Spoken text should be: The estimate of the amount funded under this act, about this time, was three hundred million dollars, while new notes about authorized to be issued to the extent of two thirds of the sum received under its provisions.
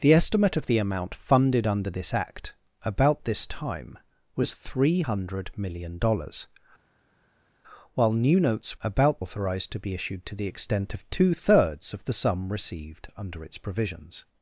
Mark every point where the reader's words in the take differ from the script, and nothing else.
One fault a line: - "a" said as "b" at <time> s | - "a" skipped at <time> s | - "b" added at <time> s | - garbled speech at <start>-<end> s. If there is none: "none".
none